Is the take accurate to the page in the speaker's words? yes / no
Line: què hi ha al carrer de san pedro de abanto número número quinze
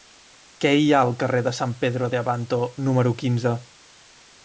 no